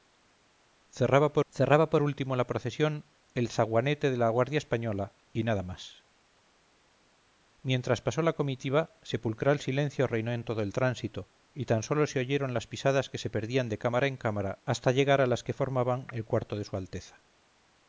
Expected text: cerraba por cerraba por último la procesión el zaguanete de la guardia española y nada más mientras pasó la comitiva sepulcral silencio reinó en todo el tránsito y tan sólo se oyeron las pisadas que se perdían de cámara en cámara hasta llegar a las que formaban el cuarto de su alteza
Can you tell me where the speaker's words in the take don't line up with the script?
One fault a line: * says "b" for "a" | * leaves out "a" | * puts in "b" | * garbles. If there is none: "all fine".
all fine